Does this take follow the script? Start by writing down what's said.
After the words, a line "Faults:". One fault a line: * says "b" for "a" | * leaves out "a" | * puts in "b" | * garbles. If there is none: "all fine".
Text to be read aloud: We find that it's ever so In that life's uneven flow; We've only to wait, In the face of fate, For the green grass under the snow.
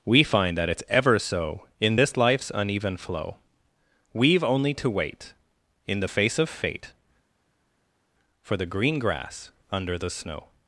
We find that it's ever so In this life's uneven flow; We've only to wait, In the face of fate, For the green grass under the snow.
Faults:
* says "this" for "that"